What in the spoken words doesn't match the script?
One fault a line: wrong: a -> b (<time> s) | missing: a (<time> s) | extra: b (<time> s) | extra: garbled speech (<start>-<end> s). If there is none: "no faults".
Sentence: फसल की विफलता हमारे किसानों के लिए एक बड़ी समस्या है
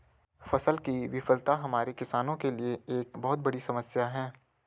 extra: बहुत (3.2 s)